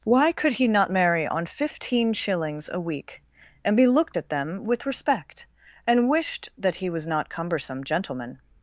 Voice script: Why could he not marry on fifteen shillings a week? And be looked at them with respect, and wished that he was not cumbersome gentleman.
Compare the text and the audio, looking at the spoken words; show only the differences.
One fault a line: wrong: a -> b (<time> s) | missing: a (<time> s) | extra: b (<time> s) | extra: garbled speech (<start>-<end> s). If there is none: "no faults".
no faults